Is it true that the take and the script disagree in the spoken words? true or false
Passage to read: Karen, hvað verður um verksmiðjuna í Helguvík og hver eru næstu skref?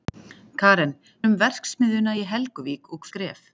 true